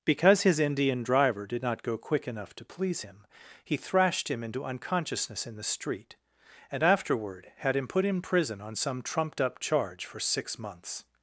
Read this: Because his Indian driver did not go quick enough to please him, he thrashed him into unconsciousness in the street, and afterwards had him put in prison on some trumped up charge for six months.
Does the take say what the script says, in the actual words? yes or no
no